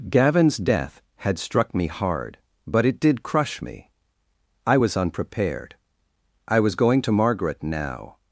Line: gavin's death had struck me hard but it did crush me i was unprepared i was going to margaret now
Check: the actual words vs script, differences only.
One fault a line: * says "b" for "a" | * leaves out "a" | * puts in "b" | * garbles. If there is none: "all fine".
all fine